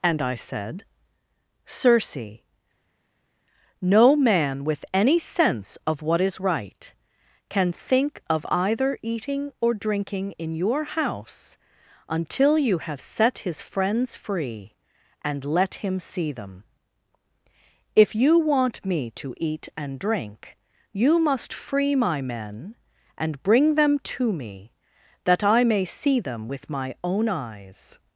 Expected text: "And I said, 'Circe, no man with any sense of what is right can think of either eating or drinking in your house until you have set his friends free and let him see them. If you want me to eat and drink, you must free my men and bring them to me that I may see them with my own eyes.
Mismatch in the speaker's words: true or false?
false